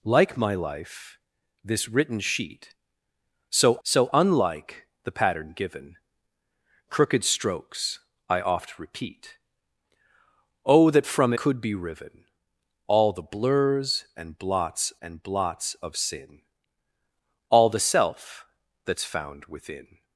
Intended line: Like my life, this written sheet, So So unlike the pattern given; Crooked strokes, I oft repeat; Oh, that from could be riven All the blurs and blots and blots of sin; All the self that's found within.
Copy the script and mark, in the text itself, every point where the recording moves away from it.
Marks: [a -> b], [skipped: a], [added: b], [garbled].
Like my life, this written sheet, So So unlike the pattern given; Crooked strokes, I oft repeat; Oh, that from could be riven All the blurs and blots and blots of sin; All the self that's found within.